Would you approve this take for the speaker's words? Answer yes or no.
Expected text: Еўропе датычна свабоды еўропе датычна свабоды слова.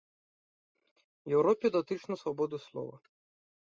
no